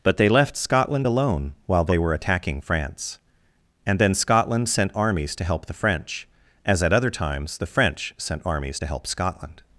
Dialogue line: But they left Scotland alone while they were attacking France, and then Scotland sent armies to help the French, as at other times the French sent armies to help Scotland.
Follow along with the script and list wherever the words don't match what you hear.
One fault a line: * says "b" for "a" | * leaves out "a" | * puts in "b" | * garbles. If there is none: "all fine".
all fine